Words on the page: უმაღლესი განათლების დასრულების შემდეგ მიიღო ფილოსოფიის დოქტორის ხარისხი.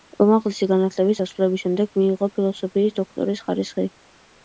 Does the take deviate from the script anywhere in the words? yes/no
no